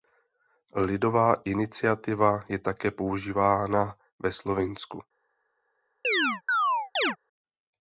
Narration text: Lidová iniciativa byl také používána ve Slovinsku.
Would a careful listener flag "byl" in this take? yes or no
yes